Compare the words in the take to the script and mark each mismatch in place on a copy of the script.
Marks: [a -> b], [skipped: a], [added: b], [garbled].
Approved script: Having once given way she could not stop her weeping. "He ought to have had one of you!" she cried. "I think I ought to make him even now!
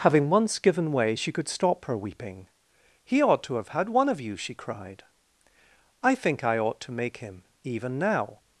Having once given way she could [skipped: not] stop her weeping. "He ought to have had one of you!" she cried. "I think I ought to make him even now!